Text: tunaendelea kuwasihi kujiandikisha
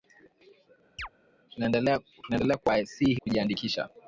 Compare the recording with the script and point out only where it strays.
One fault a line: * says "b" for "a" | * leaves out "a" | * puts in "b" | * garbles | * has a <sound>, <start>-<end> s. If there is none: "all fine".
* has a chirp, 1.0-1.1 s